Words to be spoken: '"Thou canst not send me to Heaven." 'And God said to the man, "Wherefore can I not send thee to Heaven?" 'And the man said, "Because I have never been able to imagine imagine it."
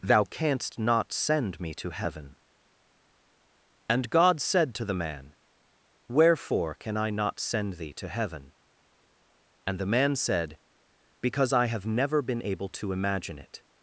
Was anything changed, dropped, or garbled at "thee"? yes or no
no